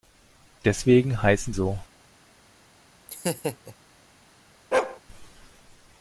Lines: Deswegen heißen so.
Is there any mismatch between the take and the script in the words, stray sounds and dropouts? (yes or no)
yes